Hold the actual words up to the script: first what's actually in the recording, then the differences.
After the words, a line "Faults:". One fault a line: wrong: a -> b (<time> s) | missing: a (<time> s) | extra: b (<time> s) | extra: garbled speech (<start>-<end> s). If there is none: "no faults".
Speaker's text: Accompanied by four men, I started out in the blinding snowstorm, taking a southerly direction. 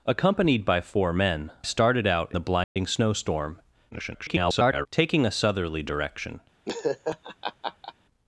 Accompanied by four men, started out the blinding snowstorm, [garbled] taking a southerly direction.
Faults:
missing: I (1.5 s)
missing: in (2.3 s)
extra: garbled speech (3.9-4.9 s)